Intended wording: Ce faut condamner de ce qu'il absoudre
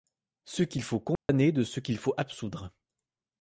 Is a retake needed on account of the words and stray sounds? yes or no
yes